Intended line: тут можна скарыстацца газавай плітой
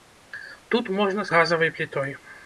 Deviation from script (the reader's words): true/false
true